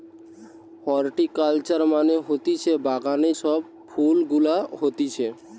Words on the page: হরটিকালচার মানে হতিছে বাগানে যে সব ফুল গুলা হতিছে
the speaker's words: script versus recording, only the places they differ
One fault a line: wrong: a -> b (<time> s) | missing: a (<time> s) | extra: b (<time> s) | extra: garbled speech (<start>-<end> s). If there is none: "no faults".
missing: যে (3.3 s)